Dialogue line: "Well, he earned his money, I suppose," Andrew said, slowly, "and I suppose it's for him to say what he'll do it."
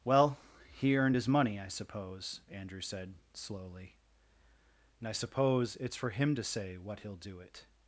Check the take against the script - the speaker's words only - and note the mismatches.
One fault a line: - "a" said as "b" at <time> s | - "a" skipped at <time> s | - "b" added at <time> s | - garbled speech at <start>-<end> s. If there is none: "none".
none